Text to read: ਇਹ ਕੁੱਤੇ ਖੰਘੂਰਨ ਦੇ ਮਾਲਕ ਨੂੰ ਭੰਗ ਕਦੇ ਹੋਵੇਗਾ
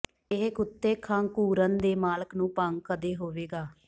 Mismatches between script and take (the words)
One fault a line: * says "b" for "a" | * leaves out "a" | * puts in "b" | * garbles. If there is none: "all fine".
all fine